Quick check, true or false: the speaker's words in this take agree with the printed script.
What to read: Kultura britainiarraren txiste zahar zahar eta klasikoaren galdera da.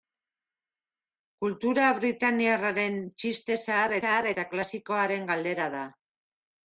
true